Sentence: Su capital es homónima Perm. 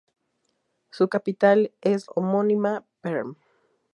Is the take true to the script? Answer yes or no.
yes